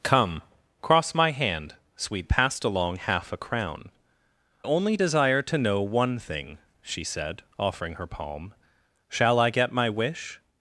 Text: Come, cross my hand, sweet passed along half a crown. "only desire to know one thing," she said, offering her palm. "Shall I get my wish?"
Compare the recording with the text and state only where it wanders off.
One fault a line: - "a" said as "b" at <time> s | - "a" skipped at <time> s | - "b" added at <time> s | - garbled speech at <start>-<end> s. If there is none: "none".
none